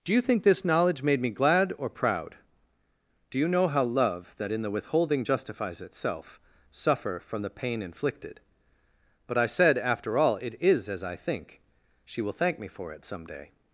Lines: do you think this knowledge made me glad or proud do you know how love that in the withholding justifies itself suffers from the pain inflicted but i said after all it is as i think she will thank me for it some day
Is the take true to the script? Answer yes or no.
no